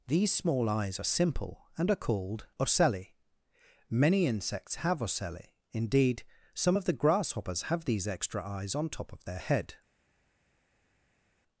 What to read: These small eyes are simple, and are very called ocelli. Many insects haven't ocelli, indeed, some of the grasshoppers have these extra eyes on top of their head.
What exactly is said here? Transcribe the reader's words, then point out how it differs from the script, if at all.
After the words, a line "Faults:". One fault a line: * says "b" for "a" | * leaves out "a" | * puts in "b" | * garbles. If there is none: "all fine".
These small eyes are simple, and are called ocelli. Many insects have ocelli, indeed, some of the grasshoppers have these extra eyes on top of their head.
Faults:
* leaves out "very"
* says "have" for "haven't"